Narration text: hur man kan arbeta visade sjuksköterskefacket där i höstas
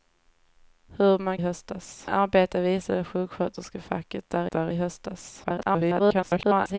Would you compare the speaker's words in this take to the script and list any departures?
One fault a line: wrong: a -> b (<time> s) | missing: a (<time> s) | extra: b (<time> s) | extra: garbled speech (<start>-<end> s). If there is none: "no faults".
wrong: kan -> höstas (1.4 s)
extra: där (4.5 s)
extra: garbled speech (5.4-6.8 s)